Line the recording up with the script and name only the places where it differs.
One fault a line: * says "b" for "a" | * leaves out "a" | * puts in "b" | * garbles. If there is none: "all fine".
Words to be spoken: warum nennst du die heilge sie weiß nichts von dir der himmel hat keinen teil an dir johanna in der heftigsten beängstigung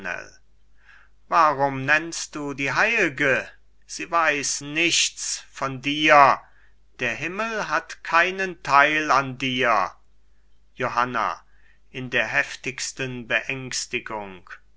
all fine